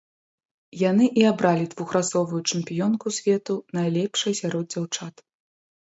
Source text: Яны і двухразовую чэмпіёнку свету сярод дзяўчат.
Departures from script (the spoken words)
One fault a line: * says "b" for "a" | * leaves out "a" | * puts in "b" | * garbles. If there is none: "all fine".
* puts in "абралі"
* puts in "найлепшай"